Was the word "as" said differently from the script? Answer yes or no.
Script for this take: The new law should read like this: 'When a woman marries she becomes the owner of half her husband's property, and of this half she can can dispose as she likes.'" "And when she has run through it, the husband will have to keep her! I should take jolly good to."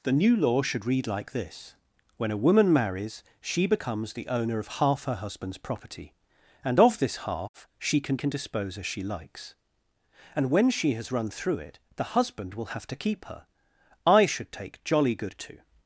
no